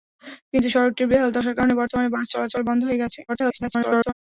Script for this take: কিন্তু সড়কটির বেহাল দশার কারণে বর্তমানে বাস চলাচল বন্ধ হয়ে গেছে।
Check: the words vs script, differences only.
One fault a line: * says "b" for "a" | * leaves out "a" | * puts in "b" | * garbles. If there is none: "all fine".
* garbles